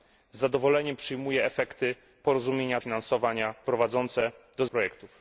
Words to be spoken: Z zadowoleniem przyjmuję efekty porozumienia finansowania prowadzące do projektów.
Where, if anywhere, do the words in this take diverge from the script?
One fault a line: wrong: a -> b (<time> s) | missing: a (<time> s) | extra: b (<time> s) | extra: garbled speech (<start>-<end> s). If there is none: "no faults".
no faults